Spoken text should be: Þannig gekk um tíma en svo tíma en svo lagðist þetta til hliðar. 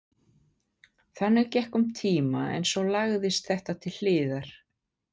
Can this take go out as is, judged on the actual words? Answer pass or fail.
fail